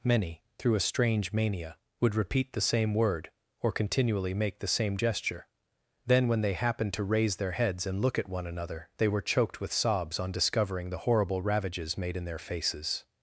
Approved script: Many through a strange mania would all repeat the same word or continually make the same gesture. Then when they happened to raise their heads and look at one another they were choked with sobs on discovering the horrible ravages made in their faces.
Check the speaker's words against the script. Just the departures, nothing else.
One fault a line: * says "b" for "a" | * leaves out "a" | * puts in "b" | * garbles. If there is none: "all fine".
* leaves out "all"